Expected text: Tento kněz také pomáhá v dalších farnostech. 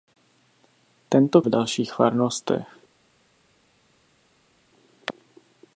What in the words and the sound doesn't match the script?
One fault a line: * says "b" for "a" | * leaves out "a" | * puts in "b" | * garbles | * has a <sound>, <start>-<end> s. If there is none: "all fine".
* leaves out "kněz také pomáhá"